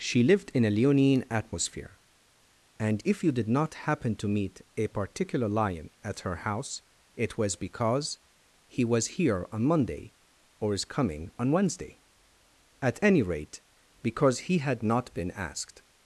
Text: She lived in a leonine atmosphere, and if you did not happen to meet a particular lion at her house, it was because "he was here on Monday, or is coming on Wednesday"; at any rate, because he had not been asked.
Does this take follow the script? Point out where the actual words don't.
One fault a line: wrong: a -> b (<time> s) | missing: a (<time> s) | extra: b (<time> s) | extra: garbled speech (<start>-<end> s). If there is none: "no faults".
no faults